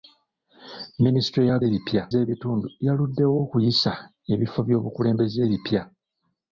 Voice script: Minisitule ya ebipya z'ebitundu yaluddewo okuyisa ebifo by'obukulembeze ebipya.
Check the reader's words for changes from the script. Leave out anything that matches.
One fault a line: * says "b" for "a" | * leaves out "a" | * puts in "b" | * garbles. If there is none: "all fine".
all fine